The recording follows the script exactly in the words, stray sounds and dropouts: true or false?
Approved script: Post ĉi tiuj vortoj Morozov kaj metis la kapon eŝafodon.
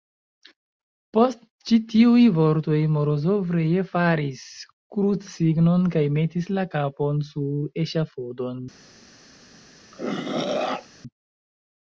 false